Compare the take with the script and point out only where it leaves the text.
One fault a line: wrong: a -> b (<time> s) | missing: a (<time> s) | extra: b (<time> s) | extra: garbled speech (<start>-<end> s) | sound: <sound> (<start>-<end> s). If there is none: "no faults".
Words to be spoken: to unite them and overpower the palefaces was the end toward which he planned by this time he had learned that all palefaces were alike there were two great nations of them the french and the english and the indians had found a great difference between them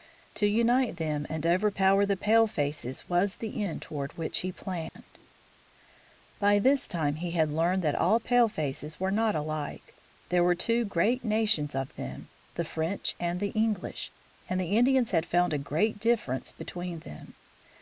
sound: dropout (4.9-5.0 s)
extra: not (9.1 s)